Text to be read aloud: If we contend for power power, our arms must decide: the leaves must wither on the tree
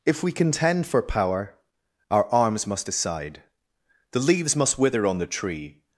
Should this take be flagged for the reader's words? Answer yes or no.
yes